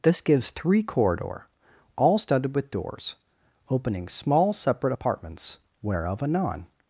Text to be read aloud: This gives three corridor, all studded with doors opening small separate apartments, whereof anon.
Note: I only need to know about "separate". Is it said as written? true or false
true